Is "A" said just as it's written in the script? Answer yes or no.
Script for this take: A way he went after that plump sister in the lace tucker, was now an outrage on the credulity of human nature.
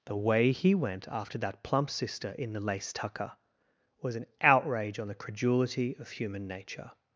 no